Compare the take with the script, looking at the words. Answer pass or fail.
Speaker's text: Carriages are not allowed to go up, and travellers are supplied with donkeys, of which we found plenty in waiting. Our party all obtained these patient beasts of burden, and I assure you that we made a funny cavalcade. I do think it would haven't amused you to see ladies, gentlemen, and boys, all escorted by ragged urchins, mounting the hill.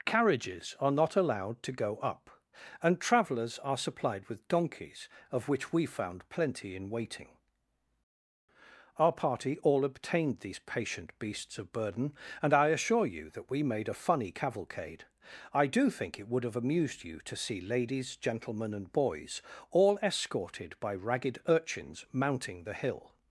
fail